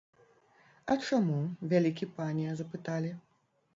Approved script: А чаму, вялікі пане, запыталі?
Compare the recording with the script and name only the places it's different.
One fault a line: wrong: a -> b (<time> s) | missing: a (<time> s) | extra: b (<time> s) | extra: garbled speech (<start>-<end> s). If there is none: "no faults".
no faults